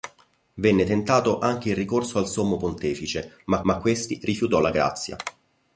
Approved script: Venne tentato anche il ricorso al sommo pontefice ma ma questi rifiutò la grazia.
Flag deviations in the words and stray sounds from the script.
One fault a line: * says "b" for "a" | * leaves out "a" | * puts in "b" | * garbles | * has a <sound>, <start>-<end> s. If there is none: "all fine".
all fine